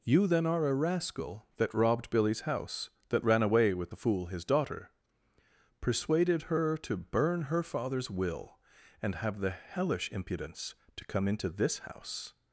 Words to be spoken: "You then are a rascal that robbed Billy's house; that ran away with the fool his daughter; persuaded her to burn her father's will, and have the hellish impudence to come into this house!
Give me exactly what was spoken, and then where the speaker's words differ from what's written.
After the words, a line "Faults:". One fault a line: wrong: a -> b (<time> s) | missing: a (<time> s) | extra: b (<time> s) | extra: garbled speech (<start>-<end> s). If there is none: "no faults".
"You then are a rascal that robbed Billy's house; that ran away with the fool his daughter; persuaded her to burn her father's will, and have the hellish impudence to come into this house!
Faults:
no faults